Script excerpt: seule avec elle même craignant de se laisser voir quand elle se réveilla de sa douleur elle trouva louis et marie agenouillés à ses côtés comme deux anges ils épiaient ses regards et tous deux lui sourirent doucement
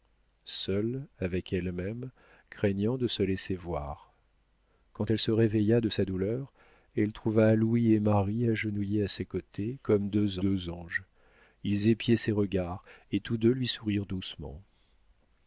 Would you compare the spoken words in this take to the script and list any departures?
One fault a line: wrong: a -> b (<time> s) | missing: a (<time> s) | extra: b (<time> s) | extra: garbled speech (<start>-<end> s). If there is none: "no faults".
extra: deux (10.4 s)